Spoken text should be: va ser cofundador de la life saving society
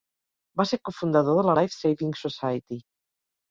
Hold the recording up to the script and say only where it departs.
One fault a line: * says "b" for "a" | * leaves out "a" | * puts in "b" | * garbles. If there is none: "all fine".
all fine